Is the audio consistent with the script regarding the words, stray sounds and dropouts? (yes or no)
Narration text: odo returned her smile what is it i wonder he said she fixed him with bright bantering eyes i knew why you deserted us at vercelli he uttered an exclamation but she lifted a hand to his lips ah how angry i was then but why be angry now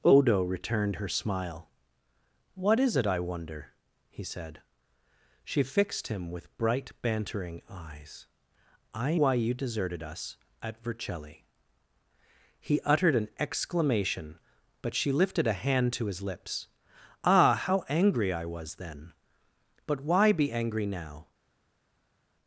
no